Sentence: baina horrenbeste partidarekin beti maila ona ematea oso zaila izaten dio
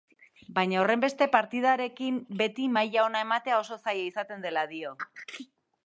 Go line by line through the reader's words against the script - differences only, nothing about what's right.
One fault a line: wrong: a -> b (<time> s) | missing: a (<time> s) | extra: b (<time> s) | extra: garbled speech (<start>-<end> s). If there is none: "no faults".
extra: dela (4.5 s)